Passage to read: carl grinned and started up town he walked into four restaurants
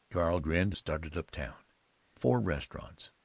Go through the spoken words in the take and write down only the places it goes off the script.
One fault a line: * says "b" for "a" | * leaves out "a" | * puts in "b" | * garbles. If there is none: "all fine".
* leaves out "and"
* leaves out "he walked into"